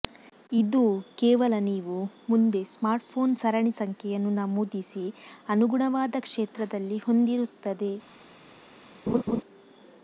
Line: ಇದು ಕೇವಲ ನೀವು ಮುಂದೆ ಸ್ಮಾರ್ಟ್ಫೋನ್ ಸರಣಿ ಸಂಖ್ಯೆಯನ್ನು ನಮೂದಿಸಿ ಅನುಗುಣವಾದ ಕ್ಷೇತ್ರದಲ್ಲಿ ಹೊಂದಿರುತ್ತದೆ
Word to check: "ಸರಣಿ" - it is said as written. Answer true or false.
true